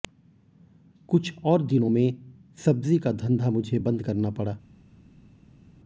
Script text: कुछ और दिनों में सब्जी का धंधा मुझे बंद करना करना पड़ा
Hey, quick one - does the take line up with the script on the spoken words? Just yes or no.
no